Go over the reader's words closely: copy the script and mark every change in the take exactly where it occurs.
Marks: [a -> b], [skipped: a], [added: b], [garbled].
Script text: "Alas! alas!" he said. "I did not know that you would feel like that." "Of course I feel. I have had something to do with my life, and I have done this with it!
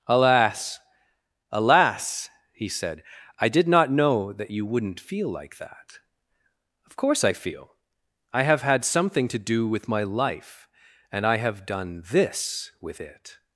"Alas! alas!" he said. "I did not know that you [would -> wouldn't] feel like that." "Of course I feel. I have had something to do with my life, and I have done this with it!